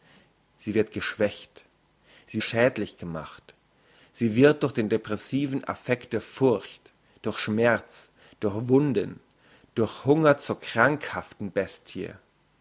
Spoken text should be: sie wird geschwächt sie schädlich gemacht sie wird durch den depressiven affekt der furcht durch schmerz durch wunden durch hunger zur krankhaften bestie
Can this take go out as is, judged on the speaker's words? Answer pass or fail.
pass